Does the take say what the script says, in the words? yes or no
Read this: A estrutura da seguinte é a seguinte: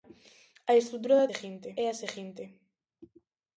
yes